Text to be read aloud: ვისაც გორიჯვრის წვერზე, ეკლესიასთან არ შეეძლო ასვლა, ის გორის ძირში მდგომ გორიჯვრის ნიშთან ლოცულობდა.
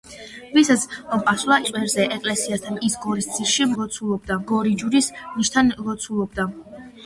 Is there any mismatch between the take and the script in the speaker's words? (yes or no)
yes